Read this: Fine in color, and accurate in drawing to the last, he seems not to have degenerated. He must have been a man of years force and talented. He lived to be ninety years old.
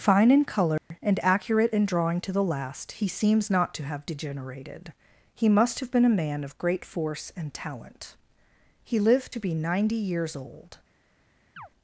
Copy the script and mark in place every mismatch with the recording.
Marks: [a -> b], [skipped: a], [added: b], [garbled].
Fine in color, and accurate in drawing to the last, he seems not to have degenerated. He must have been a man of [years -> great] force and [talented. -> talent] He lived to be ninety years old.